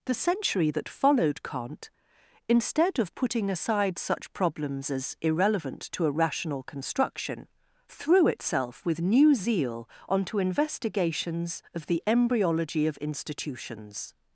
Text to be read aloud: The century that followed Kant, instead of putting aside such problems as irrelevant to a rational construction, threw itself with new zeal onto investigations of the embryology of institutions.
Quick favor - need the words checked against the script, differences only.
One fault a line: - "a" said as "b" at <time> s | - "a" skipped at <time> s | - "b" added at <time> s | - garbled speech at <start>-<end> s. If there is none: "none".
none